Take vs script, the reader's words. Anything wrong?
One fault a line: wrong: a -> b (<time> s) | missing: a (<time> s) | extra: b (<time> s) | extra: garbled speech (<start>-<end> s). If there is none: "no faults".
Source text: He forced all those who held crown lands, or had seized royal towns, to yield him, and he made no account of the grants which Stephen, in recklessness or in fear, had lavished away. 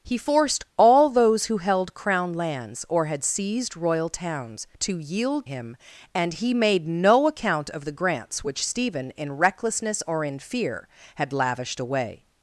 no faults